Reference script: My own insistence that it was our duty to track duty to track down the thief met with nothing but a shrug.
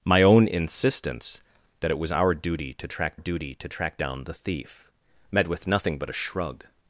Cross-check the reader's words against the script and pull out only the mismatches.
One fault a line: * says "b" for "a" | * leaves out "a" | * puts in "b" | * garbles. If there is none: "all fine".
all fine